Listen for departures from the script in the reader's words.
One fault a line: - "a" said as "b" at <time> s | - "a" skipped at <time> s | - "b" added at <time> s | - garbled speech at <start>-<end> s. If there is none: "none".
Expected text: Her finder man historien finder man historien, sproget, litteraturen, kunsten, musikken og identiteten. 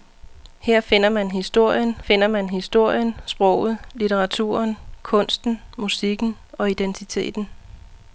none